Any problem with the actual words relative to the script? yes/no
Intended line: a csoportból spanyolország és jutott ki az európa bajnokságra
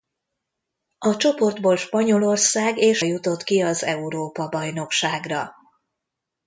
no